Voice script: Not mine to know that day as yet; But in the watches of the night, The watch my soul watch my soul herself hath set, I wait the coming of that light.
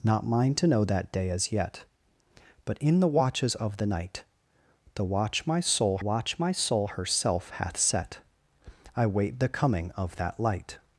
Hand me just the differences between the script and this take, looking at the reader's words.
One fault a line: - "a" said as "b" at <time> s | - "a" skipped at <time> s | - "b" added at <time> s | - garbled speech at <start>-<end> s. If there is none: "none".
none